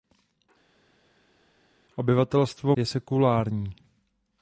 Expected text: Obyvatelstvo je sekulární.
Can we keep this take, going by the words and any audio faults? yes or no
yes